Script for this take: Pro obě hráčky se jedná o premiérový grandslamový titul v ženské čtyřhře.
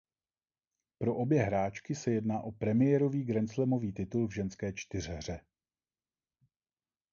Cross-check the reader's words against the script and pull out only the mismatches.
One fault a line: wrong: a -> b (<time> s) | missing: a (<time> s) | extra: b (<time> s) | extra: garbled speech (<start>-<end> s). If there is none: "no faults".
no faults